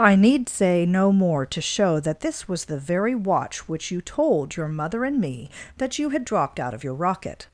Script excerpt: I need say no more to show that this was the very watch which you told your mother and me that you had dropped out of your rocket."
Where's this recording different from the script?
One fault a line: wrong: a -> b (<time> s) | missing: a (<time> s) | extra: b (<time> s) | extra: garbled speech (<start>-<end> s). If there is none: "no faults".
no faults